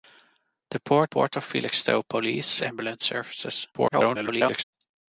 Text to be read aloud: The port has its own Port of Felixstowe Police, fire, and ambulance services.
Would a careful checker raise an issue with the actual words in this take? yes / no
yes